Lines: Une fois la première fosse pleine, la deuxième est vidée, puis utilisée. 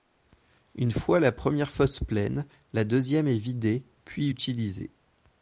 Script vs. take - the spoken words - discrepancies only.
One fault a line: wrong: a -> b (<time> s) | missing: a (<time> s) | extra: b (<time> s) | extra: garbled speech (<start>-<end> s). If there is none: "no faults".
no faults